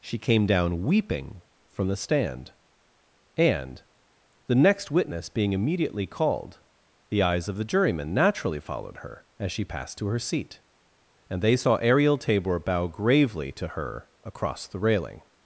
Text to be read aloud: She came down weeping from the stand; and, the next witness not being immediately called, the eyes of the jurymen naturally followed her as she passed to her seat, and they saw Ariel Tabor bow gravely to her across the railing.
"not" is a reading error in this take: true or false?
true